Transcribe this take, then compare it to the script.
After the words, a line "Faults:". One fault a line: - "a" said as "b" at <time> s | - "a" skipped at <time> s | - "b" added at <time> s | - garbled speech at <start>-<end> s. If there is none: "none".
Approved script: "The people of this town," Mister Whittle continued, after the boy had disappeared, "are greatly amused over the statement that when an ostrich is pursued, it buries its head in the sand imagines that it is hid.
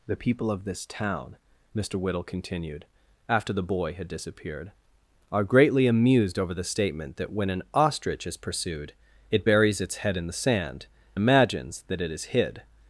"The people of this town," Mister Whittle continued, after the boy had disappeared, "are greatly amused over the statement that when an ostrich is pursued, it buries its head in the sand imagines that it is hid.
Faults:
none